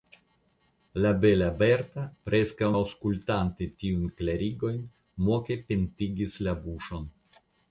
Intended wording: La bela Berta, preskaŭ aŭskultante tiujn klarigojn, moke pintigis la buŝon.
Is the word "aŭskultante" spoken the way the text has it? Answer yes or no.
yes